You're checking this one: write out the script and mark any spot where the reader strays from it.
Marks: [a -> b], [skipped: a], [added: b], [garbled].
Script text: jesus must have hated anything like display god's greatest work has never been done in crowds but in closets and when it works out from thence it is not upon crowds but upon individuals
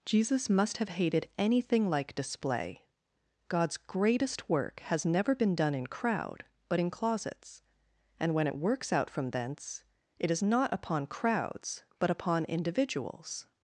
jesus must have hated anything like display god's greatest work has never been done in [crowds -> crowd] but in closets and when it works out from thence it is not upon crowds but upon individuals